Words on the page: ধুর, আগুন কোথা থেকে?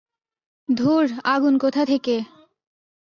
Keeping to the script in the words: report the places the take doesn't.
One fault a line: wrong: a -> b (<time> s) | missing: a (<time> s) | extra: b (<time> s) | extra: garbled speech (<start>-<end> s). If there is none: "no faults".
no faults